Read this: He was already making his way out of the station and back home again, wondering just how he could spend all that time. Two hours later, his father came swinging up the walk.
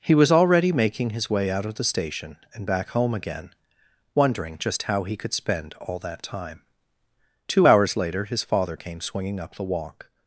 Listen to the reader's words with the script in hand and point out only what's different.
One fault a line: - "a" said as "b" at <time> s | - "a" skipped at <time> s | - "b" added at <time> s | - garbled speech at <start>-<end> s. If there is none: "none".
none